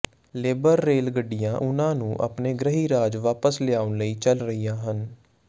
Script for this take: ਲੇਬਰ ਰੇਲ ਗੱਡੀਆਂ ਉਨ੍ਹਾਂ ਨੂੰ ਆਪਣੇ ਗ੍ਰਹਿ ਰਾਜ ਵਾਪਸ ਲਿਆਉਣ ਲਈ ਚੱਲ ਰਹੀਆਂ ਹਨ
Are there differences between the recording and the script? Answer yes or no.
no